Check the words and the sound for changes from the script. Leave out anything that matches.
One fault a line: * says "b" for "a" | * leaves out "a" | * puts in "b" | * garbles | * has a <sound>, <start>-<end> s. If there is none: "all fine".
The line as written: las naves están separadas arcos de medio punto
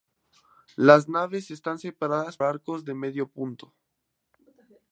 all fine